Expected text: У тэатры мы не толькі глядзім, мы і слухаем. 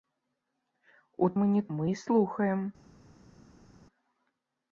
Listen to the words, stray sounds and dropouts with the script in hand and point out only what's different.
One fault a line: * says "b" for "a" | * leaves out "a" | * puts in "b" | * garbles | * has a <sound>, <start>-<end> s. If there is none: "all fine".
* leaves out "тэатры"
* leaves out "толькі глядзім"